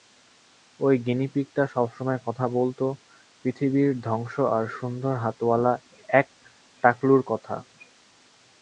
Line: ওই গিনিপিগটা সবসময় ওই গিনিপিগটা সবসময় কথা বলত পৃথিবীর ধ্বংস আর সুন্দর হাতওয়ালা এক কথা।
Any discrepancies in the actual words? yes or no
yes